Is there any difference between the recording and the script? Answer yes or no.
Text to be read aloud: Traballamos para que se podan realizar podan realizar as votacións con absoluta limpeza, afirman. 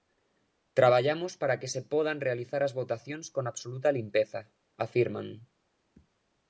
yes